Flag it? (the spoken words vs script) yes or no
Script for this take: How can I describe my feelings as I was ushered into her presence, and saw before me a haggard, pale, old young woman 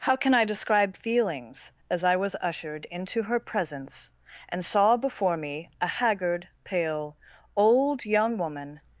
yes